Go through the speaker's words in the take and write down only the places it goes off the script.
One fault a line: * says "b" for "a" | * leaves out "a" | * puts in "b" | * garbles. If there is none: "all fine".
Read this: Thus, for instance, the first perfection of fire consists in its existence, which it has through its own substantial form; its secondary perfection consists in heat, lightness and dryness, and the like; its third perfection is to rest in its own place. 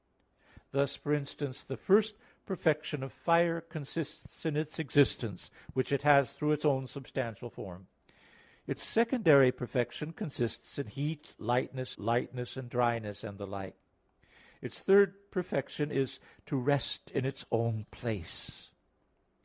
* puts in "lightness"